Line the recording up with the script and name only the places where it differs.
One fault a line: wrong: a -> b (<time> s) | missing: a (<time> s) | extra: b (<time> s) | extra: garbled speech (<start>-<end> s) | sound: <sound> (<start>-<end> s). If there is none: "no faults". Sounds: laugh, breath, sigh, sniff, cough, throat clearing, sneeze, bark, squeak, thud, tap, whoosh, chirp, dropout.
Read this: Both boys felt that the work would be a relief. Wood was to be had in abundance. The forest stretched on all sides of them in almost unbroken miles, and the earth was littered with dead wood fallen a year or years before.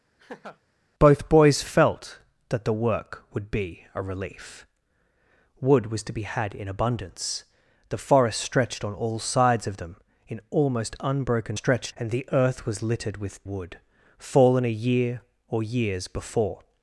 sound: laugh (0.2-0.6 s)
wrong: miles -> stretched (11.5 s)
missing: dead (13.4 s)